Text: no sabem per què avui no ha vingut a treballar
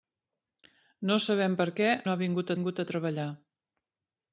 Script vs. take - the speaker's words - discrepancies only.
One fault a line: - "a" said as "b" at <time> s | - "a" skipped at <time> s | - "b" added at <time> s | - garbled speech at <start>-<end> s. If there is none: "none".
- "avui" skipped at 1.9 s
- "vingut" added at 2.6 s